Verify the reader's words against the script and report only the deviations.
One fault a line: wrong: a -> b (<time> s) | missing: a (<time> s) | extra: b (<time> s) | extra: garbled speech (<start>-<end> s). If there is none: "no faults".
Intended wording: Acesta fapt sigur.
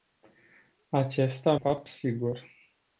no faults